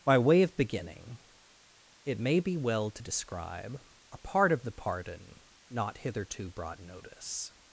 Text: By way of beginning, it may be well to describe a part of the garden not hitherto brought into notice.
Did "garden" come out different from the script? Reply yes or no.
yes